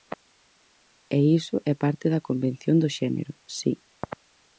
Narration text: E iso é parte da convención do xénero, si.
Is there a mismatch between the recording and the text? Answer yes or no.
no